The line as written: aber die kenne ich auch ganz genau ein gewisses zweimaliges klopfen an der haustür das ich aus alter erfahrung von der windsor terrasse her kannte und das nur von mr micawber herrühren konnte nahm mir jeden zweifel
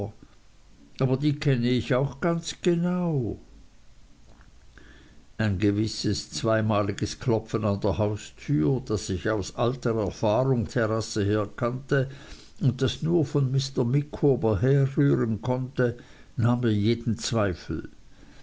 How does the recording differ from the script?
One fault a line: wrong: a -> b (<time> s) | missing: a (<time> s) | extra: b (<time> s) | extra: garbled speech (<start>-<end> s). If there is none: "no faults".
missing: von der windsor (10.7 s)